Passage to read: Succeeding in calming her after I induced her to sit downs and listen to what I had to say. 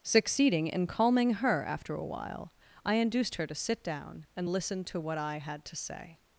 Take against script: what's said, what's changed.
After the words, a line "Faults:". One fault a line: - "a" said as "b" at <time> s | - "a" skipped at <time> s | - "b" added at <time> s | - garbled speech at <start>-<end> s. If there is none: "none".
Succeeding in calming her after a while, I induced her to sit down and listen to what I had to say.
Faults:
- "a while" added at 1.9 s
- "downs" said as "down" at 3.8 s